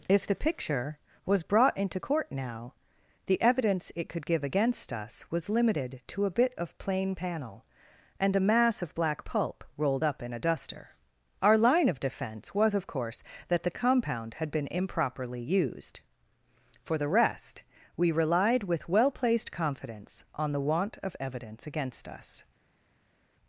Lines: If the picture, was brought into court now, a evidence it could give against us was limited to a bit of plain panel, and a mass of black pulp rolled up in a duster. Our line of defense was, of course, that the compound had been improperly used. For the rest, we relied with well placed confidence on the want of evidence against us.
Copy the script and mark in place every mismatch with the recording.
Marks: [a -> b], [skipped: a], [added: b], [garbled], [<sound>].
If the picture, was brought into court now, [a -> the] evidence it could give against us was limited to a bit of plain panel, and a mass of black pulp rolled up in a duster. Our line of defense was, of course, that the compound had been improperly used. For the rest, we relied with well placed confidence on the want of evidence against us.